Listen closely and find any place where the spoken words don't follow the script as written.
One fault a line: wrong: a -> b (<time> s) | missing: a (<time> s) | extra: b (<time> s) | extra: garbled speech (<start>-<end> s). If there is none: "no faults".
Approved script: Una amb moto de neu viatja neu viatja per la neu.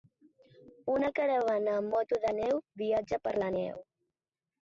extra: caravana (1.2 s)
missing: neu viatja (3.2 s)